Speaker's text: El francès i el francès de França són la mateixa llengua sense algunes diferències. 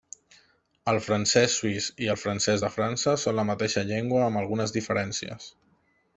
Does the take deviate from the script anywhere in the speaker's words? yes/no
yes